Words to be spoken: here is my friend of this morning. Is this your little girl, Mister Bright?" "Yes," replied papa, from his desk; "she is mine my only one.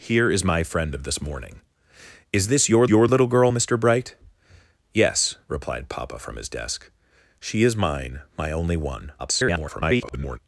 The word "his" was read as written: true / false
true